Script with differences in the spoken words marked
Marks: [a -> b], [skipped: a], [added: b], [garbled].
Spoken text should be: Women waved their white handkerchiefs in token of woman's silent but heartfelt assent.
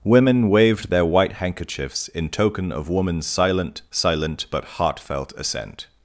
Women waved their white handkerchiefs in token of woman's silent [added: silent] but heartfelt assent.